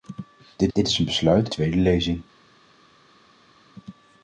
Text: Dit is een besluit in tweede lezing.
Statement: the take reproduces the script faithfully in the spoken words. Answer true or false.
false